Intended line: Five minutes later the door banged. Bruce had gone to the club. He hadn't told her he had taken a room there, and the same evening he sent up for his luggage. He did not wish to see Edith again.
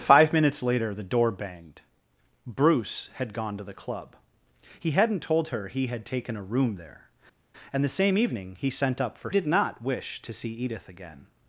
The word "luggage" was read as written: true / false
false